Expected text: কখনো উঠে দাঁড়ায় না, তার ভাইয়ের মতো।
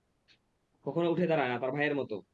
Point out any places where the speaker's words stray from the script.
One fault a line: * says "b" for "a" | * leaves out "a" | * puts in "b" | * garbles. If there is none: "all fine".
all fine